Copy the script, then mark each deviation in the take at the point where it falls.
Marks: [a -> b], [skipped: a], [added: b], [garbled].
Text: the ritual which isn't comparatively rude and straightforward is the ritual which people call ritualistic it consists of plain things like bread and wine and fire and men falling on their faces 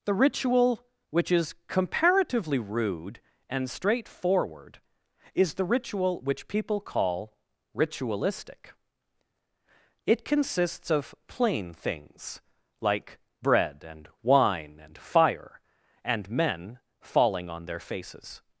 the ritual which [isn't -> is] comparatively rude and straightforward is the ritual which people call ritualistic it consists of plain things like bread and wine and fire and men falling on their faces